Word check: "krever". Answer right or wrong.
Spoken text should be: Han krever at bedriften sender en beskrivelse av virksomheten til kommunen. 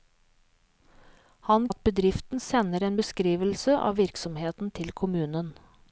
wrong